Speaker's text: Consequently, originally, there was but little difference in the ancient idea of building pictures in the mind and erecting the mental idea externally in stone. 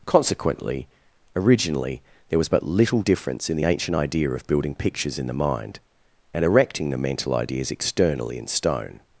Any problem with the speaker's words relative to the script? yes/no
yes